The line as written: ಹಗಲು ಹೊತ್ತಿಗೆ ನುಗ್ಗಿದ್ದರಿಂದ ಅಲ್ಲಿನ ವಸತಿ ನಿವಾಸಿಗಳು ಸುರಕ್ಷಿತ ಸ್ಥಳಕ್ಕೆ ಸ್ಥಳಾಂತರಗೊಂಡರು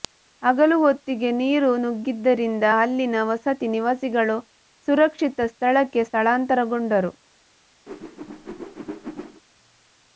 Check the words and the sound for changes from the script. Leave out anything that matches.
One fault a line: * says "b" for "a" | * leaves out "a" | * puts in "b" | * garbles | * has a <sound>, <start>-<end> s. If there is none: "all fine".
* puts in "ನೀರು"
* has a whoosh, 7.9-9.4 s